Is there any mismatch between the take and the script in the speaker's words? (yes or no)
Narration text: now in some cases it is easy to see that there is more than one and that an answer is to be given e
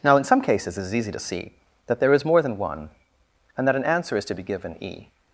no